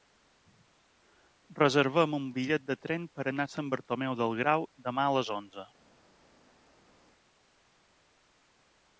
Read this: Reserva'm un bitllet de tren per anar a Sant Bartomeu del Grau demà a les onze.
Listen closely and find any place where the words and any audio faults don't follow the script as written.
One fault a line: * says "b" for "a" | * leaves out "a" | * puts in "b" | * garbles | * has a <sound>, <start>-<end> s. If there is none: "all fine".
all fine